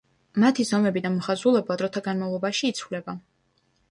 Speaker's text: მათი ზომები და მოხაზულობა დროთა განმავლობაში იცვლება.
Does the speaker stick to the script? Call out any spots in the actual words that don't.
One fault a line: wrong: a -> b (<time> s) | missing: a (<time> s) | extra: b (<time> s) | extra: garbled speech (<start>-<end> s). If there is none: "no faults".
no faults